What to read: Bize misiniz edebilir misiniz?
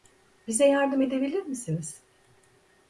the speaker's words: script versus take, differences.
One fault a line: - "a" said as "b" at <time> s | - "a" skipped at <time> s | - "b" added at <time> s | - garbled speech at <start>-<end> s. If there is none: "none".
- "misiniz" said as "yardım" at 0.7 s